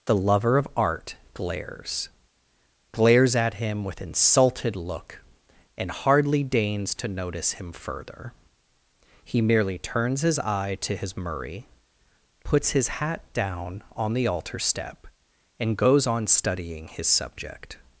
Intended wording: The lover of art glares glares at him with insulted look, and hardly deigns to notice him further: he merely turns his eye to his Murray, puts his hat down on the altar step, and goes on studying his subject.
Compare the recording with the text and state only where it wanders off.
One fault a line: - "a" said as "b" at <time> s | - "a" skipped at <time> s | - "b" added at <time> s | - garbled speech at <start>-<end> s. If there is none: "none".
none